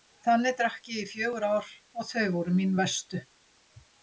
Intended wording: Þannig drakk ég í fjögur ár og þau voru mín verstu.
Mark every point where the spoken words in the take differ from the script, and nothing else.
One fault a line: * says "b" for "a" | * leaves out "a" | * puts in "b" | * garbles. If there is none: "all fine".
all fine